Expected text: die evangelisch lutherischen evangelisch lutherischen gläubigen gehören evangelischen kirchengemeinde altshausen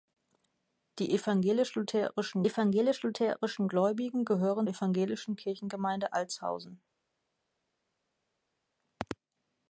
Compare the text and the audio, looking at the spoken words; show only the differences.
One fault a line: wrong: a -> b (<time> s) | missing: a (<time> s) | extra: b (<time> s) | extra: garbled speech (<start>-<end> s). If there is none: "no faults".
no faults